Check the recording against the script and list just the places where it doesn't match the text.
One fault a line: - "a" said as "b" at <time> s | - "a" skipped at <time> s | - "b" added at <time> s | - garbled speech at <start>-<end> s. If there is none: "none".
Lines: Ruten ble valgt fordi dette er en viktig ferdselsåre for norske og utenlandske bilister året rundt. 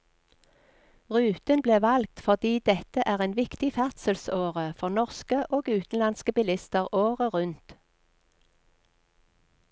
none